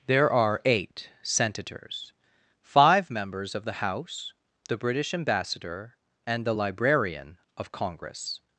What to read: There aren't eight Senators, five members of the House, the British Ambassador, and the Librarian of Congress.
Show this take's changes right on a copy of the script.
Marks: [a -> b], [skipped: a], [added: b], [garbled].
There [aren't -> are] eight Senators, five members of the House, the British Ambassador, and the Librarian of Congress.